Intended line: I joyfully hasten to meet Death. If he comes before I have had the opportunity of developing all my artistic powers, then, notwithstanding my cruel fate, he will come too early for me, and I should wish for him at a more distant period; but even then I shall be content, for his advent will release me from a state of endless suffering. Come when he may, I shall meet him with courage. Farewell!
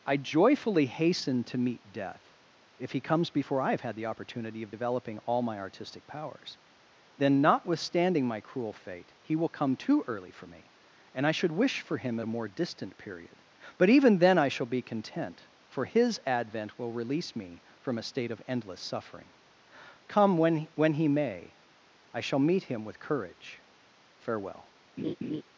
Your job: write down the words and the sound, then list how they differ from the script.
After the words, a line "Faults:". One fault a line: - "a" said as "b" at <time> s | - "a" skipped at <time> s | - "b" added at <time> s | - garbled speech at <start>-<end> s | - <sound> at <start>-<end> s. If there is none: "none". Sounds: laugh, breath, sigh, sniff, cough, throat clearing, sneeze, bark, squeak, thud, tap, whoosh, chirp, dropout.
I joyfully hasten to meet Death. If he comes before I have had the opportunity of developing all my artistic powers, then, notwithstanding my cruel fate, he will come too early for me, and I should wish for him at a more distant period; but even then I shall be content, for his advent will release me from a state of endless suffering. Come when when he may, I shall meet him with courage. Farewell!
Faults:
- "when" added at 20.7 s
- laugh at 25.0-25.4 s